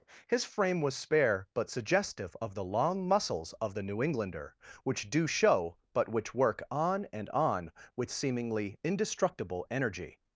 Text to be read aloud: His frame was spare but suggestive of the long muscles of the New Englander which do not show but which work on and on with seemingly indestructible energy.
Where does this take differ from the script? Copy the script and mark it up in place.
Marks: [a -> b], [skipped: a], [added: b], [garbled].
His frame was spare but suggestive of the long muscles of the New Englander which do [skipped: not] show but which work on and on with seemingly indestructible energy.